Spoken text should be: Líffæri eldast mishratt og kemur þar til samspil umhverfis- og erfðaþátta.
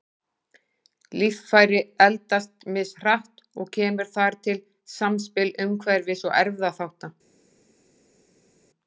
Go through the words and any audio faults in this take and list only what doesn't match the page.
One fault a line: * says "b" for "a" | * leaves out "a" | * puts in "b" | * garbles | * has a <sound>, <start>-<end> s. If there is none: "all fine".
all fine